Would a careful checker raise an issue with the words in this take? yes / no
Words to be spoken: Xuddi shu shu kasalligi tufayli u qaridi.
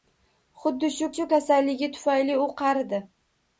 no